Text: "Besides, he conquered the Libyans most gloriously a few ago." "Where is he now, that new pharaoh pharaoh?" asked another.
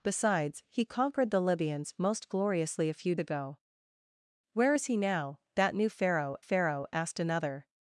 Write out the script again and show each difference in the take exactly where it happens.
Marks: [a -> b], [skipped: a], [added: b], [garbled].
"Besides, he conquered the Libyans most gloriously a few ago." "Where is he now, that new pharaoh pharaoh?" asked another.